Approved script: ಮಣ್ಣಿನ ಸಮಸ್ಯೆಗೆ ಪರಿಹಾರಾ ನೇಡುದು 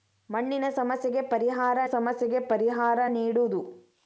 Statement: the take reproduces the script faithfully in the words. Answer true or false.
false